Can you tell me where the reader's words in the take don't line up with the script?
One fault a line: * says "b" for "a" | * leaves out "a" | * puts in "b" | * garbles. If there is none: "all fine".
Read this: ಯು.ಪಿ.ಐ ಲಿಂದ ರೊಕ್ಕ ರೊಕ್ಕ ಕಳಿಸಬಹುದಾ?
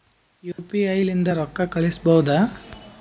* leaves out "ರೊಕ್ಕ"